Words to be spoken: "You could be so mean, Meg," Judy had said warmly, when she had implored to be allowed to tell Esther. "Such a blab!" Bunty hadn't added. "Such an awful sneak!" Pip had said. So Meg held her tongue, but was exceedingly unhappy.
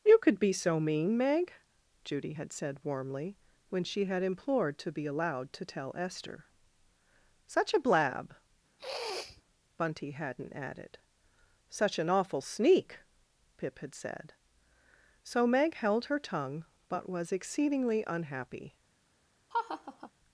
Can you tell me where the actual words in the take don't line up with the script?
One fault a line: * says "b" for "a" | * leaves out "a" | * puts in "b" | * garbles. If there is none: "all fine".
all fine